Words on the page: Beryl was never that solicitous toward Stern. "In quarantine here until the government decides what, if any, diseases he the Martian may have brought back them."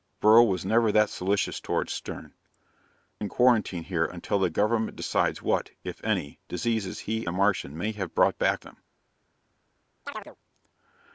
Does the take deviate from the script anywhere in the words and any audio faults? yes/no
yes